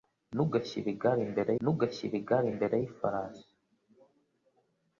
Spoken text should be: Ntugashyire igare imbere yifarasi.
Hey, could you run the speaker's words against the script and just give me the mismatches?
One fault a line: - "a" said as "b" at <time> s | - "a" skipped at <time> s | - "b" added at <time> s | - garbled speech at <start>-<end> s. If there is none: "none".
- "ntugashyire igare imbere" added at 1.6 s